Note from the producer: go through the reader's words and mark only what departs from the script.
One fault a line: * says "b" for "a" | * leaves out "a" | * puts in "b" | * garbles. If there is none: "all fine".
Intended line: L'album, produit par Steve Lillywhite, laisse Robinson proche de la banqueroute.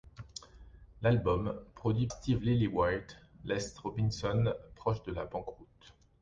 * leaves out "par"